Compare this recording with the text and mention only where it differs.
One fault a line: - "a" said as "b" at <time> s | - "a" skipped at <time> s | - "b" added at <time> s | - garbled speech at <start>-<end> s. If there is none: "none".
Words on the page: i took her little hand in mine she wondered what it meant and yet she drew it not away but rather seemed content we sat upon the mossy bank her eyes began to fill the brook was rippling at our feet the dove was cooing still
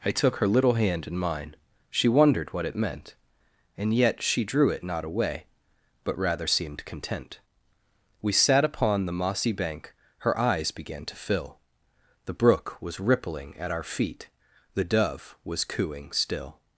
none